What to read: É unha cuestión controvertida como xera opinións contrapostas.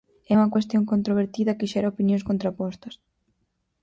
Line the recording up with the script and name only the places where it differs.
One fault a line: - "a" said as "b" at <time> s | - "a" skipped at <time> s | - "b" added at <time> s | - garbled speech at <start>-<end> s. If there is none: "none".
- "como" said as "que" at 1.6 s